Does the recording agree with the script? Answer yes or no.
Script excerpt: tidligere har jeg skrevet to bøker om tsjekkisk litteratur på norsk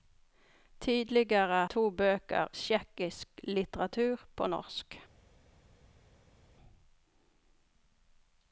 no